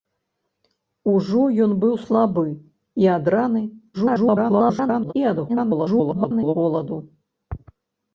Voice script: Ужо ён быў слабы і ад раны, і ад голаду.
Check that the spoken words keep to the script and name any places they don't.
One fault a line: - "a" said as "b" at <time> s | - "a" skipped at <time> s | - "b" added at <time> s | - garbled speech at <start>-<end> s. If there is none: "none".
- garbled speech at 3.9-5.1 s
- garbled speech at 5.5-6.6 s